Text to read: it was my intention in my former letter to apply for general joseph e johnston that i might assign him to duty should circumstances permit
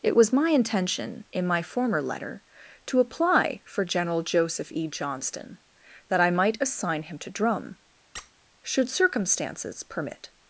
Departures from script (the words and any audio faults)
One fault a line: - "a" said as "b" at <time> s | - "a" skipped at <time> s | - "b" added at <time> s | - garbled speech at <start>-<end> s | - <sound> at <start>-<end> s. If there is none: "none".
- "duty" said as "drum" at 7.3 s
- squeak at 8.1-8.3 s